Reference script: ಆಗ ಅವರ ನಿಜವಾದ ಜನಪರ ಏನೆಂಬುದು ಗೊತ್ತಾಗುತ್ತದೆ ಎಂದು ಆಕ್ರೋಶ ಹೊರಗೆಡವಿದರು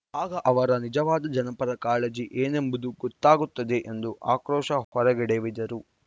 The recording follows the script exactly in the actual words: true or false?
false